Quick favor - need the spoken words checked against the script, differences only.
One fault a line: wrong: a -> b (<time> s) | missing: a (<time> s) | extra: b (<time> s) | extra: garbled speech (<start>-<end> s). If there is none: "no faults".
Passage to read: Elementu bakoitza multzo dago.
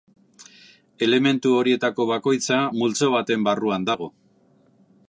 extra: horietako (1.6 s)
extra: baten barruan (3.2 s)